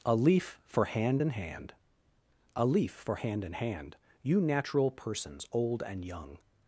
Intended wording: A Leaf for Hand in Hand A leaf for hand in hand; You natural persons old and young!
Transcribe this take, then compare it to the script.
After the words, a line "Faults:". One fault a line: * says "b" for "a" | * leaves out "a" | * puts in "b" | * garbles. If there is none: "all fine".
A Leaf for Hand in Hand A leaf for hand in hand; You natural persons old and young!
Faults:
all fine